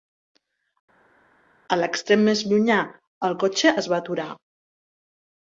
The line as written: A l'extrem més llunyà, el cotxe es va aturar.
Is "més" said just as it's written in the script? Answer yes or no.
yes